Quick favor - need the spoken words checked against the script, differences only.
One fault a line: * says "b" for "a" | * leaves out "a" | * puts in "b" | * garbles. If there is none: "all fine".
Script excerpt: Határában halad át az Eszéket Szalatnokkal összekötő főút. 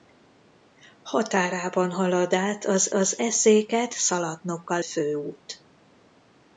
* puts in "az"
* leaves out "összekötő"